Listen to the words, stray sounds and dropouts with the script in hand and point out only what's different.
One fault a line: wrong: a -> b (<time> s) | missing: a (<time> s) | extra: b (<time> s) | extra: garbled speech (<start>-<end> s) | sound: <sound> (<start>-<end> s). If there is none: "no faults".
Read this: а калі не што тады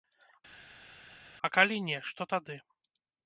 no faults